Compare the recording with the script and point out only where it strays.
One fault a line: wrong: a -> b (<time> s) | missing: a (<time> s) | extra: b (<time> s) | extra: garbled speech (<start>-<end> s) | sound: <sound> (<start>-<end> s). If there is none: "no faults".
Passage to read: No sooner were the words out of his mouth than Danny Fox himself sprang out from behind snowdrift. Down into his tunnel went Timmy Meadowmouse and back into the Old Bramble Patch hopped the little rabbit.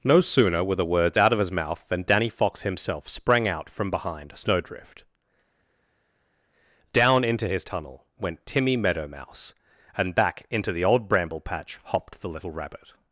no faults